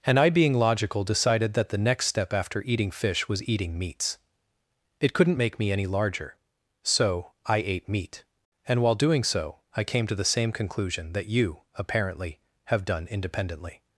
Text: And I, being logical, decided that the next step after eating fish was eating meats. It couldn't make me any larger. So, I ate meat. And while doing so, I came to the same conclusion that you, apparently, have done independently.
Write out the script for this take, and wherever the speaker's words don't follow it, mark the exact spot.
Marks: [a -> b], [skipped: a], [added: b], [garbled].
And I, being logical, decided that the next step after eating fish was eating meats. It couldn't make me any larger. So, I ate meat. And while doing so, I came to the same conclusion that you, apparently, have done independently.